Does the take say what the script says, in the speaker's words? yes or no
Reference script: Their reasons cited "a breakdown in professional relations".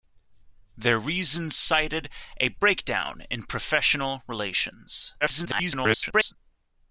no